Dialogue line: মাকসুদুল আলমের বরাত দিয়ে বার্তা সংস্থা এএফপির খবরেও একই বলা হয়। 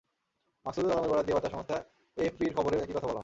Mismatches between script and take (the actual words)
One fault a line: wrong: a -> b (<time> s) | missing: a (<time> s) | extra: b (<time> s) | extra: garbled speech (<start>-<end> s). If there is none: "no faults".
extra: কথা (2.9 s)